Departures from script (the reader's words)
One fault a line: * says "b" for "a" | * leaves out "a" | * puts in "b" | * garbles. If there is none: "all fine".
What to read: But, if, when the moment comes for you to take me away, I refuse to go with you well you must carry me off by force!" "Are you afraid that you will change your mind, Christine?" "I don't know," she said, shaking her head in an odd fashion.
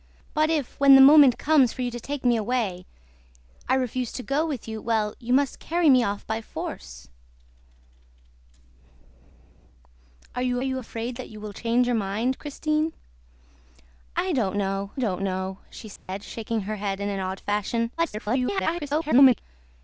* puts in "you"
* puts in "don't know"
* garbles